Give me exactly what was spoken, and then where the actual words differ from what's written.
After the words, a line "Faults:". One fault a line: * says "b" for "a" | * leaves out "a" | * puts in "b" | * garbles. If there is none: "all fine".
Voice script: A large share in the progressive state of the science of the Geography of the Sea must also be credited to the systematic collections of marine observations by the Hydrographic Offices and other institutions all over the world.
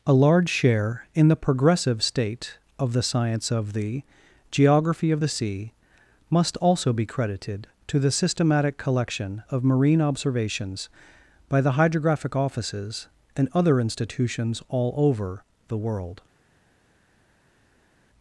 A large share in the progressive state of the science of the Geography of the Sea must also be credited to the systematic collection of marine observations by the Hydrographic Offices and other institutions all over the world.
Faults:
* says "collection" for "collections"